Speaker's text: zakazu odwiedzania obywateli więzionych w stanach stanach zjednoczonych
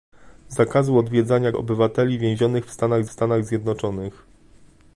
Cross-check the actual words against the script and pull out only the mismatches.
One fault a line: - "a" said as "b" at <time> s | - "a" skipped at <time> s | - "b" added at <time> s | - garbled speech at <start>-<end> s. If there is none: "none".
none